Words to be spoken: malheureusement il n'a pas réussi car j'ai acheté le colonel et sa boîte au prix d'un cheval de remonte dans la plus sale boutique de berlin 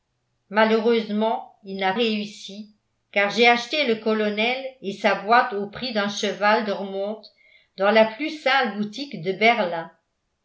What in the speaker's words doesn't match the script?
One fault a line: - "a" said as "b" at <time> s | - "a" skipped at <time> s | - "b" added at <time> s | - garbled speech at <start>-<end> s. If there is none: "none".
- "pas" skipped at 1.9 s